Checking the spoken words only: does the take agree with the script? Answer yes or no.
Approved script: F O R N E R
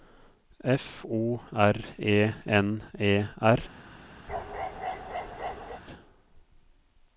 no